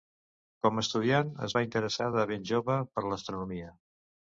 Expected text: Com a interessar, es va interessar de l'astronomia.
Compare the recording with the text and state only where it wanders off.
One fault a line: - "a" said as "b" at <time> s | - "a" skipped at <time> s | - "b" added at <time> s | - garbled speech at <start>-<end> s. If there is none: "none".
- "interessar" said as "estudiant" at 0.8 s
- "ben jove per" added at 2.4 s